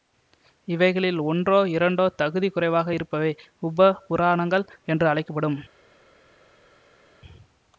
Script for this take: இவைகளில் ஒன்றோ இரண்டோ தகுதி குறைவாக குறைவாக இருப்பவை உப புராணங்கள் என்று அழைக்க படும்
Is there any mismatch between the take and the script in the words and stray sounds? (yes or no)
yes